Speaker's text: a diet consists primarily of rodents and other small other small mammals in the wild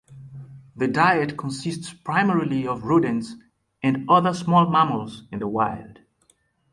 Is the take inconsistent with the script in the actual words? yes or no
yes